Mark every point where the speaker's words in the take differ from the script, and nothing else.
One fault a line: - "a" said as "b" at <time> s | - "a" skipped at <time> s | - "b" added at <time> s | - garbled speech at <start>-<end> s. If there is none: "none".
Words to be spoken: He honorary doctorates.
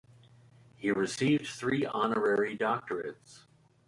- "received three" added at 0.9 s